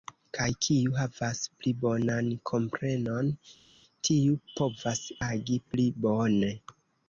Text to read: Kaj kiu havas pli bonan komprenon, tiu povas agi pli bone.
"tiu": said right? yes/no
yes